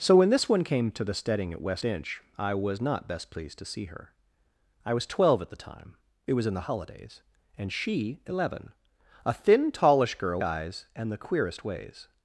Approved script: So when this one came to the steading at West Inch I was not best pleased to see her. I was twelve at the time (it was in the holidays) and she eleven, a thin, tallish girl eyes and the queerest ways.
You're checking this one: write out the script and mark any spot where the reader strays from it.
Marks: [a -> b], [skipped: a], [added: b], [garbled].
So when this one came to the steading at West Inch I was not best pleased to see her. I was twelve at the time (it was in the holidays) and she eleven, a thin, tallish girl eyes and the queerest ways.